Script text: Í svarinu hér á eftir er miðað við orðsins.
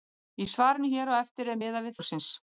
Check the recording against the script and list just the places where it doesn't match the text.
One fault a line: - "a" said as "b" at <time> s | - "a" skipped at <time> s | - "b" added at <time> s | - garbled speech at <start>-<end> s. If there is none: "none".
none